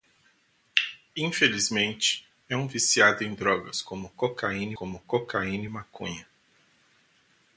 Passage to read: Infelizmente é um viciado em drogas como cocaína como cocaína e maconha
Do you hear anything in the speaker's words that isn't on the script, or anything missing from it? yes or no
no